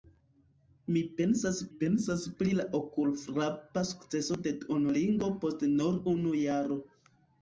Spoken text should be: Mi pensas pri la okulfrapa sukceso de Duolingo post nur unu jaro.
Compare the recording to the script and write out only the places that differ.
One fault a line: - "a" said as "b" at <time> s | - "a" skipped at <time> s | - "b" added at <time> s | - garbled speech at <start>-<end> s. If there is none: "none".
- "pensas" added at 1.8 s